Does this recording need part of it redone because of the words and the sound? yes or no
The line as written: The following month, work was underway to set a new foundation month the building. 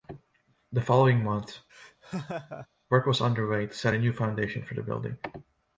yes